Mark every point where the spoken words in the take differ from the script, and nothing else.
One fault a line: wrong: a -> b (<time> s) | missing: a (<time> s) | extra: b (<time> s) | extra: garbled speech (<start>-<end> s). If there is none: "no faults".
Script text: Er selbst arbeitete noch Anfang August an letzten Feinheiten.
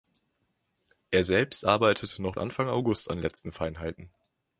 no faults